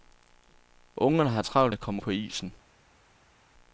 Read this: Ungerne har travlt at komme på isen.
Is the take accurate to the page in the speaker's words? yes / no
yes